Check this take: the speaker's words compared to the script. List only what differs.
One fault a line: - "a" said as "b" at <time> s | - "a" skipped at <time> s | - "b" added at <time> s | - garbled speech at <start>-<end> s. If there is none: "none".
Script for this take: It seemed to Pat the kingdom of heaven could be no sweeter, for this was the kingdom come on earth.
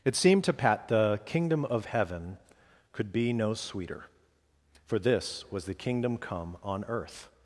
none